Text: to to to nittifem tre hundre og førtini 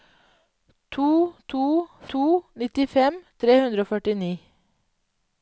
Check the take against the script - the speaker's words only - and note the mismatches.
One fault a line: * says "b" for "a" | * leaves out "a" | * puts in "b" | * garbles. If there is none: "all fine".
all fine